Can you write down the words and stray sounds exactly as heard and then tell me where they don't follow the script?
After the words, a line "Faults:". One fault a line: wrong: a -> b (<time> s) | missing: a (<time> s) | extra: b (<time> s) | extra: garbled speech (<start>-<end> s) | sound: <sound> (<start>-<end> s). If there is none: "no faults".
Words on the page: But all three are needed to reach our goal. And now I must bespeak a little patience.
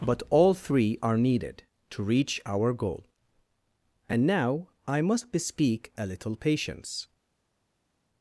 But all three are needed to reach our goal. And now I must bespeak a little patience.
Faults:
no faults